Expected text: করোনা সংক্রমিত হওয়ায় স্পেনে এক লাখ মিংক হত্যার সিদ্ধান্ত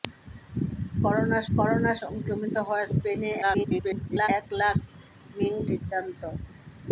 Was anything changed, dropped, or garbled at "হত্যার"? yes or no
yes